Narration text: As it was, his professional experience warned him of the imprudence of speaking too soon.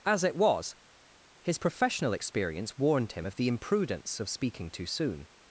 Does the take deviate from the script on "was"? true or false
false